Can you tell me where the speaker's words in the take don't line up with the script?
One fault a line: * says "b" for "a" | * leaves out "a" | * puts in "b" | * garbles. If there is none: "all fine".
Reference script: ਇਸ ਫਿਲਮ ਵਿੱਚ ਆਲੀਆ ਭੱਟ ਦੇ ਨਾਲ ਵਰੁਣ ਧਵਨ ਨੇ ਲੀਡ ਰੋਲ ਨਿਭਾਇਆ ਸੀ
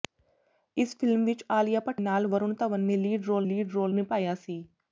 * leaves out "ਦੇ"
* puts in "ਲੀਡ ਰੋਲ"